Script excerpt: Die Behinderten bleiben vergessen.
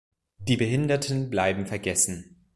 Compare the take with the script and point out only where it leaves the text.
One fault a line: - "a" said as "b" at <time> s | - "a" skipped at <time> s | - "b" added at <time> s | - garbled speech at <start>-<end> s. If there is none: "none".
none